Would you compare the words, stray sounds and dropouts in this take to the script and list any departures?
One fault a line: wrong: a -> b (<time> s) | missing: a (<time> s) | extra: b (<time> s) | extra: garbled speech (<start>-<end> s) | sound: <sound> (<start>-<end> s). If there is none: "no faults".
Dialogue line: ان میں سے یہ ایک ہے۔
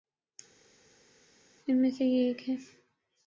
no faults